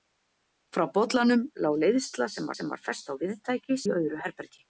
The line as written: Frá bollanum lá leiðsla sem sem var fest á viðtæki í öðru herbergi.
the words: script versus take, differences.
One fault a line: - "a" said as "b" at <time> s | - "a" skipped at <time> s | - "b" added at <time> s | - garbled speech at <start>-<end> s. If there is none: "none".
none